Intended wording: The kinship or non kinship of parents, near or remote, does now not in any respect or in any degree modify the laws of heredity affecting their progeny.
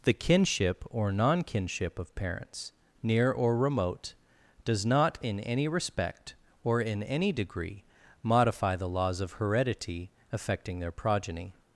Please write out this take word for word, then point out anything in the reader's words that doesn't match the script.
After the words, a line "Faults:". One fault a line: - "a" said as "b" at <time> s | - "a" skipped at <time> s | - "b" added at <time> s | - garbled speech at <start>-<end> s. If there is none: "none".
The kinship or non kinship of parents, near or remote, does not in any respect or in any degree modify the laws of heredity affecting their progeny.
Faults:
- "now" skipped at 4.8 s